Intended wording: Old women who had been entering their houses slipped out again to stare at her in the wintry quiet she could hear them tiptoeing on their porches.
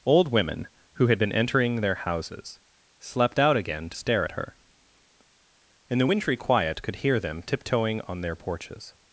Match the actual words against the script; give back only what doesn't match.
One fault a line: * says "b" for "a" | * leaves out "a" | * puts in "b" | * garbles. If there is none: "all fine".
* says "slept" for "slipped"
* leaves out "she"